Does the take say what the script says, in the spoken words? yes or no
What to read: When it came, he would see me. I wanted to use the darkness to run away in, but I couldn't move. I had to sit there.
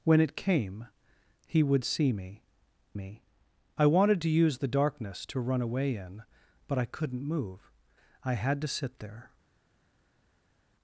no